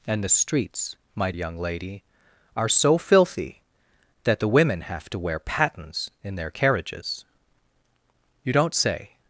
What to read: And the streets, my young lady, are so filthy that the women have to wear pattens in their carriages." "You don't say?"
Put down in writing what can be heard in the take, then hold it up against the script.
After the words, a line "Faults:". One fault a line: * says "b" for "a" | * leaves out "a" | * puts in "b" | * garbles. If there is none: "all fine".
And the streets, my young lady, are so filthy that the women have to wear pattens in their carriages." "You don't say?"
Faults:
all fine